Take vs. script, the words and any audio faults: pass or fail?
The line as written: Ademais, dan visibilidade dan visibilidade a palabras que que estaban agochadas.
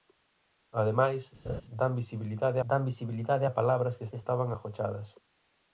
fail